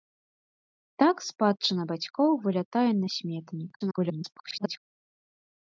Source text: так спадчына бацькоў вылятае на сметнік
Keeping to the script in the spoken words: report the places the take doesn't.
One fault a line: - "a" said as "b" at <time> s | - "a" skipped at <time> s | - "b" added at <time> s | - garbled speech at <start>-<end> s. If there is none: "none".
- garbled speech at 3.8-4.8 s